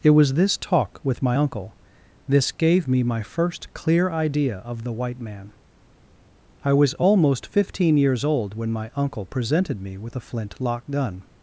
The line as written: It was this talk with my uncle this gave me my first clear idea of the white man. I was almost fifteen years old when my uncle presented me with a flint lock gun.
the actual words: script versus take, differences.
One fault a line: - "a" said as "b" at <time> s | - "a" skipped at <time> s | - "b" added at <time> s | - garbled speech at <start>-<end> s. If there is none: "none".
none